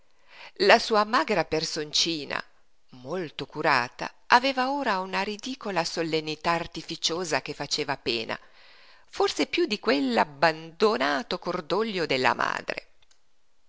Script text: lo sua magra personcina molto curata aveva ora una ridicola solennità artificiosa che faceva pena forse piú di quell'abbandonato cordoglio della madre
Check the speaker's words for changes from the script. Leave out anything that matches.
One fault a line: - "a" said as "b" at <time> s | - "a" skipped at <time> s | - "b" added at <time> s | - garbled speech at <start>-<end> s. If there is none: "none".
- "lo" said as "la" at 0.7 s